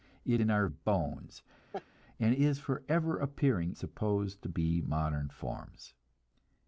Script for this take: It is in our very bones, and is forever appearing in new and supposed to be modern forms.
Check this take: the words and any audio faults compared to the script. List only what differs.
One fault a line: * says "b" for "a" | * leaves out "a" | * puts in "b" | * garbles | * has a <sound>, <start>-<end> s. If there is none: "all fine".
* leaves out "is"
* leaves out "very"
* has a laugh, 1.7-1.9 s
* leaves out "in new and"